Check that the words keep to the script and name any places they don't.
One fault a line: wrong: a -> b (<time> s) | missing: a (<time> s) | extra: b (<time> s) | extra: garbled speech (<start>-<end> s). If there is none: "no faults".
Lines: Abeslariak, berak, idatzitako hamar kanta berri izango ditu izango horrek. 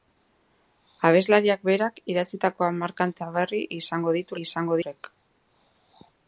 no faults